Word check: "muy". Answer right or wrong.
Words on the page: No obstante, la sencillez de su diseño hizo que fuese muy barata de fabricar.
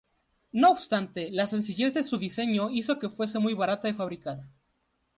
right